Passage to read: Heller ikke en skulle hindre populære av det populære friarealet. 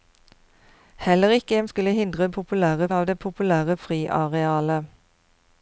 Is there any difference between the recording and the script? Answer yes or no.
no